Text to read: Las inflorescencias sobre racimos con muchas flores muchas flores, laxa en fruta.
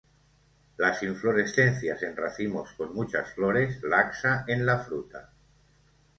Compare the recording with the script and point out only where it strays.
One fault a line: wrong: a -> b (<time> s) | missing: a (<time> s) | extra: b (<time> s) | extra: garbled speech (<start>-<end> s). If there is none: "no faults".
wrong: sobre -> en (2.0 s)
missing: muchas flores (3.8 s)
extra: la (4.7 s)